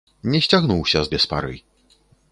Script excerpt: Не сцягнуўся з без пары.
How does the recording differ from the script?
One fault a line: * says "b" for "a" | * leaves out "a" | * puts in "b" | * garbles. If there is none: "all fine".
all fine